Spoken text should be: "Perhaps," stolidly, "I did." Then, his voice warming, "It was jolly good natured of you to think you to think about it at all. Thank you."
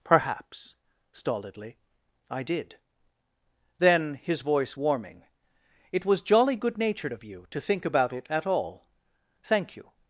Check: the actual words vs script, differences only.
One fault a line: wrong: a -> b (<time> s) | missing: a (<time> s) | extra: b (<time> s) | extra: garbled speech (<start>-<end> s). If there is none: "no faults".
missing: you to think (7.9 s)